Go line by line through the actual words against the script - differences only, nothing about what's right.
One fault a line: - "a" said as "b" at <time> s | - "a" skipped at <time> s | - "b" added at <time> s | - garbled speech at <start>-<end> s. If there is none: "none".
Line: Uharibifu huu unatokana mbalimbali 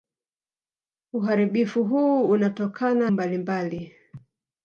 none